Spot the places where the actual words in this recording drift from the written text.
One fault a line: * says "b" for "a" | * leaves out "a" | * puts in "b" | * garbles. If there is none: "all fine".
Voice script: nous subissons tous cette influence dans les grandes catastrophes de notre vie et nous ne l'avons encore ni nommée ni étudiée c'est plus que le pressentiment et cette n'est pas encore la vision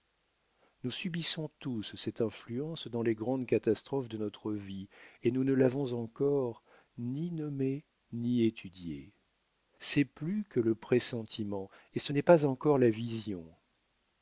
* says "ce" for "cette"